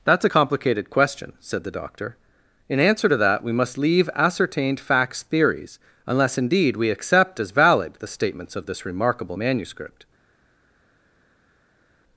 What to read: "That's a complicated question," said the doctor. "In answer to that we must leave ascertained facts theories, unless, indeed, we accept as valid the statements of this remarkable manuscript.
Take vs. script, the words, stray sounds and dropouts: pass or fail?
pass